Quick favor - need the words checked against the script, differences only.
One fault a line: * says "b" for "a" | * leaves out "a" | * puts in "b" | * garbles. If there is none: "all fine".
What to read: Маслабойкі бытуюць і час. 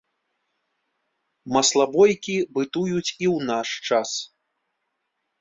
* puts in "ў наш"